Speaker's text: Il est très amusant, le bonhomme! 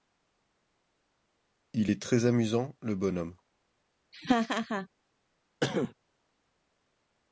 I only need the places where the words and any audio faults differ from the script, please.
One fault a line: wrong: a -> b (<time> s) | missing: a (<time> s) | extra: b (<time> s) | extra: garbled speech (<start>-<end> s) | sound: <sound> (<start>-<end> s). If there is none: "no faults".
sound: laugh (4.1-4.9 s)
sound: cough (5.6-5.9 s)